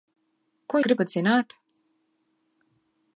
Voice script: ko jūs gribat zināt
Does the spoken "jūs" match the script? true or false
false